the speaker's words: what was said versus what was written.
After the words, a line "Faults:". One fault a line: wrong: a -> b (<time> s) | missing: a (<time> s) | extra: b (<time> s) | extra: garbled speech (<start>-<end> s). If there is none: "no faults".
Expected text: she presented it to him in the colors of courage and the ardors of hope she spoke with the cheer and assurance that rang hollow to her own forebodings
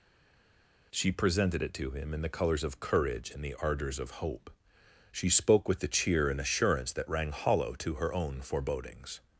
she presented it to him in the colors of courage and the ardors of hope she spoke with the cheer and assurance that rang hollow to her own forebodings
Faults:
no faults